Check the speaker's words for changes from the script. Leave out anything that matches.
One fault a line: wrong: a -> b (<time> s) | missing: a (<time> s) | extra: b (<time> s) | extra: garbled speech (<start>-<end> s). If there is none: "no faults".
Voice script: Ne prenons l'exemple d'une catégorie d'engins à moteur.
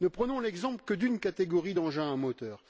extra: que (0.8 s)